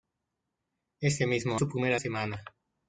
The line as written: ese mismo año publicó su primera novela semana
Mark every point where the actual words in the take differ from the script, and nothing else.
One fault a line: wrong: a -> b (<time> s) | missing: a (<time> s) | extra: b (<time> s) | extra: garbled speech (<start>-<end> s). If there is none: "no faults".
missing: año publicó (1.6 s)
missing: novela (2.0 s)